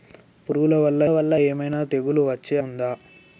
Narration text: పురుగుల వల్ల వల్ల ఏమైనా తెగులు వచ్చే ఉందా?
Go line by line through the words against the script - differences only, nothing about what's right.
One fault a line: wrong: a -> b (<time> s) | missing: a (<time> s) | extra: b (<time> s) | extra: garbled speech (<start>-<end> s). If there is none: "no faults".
no faults